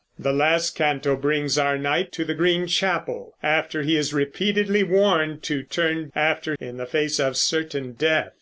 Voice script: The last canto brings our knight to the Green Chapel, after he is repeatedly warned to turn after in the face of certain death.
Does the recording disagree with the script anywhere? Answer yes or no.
no